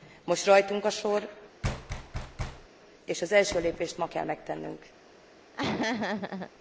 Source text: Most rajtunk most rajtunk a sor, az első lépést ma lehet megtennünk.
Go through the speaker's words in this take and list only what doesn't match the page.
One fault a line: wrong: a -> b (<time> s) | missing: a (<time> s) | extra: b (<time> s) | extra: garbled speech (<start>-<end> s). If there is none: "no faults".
missing: most rajtunk (0.8 s)
extra: és (3.1 s)
wrong: lehet -> kell (4.1 s)